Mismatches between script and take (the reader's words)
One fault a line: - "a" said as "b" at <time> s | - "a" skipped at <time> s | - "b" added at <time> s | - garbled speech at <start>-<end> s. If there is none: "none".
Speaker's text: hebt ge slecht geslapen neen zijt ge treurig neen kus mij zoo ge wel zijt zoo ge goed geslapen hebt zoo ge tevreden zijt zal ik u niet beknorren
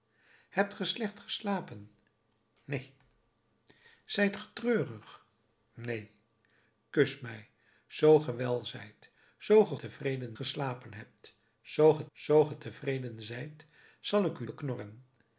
- "goed" said as "tevreden" at 9.7 s
- "zoo ge" added at 12.1 s
- "niet" skipped at 14.5 s